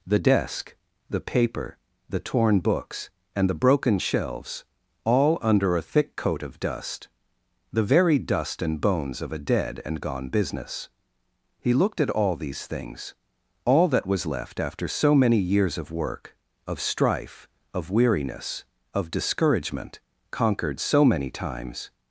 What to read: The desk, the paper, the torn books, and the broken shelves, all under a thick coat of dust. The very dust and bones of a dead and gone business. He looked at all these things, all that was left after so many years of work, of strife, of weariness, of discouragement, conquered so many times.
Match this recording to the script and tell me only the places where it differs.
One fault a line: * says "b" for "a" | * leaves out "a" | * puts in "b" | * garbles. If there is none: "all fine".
all fine